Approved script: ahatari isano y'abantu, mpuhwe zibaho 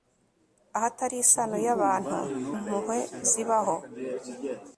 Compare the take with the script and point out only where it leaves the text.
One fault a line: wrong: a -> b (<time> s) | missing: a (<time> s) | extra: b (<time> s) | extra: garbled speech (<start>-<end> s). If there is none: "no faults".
no faults